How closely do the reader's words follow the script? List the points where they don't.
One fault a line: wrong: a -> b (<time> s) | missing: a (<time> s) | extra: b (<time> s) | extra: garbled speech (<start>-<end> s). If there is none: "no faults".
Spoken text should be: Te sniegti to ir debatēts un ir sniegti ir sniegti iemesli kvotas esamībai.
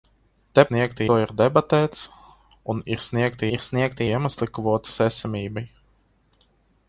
no faults